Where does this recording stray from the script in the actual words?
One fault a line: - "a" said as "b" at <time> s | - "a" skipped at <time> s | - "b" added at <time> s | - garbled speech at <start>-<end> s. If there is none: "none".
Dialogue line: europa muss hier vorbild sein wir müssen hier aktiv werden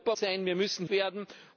- "muss hier vorbild" skipped at 0.1 s
- "hier aktiv" skipped at 0.9 s